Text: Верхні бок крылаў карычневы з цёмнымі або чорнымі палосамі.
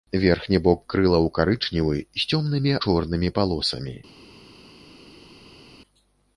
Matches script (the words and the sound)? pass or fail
fail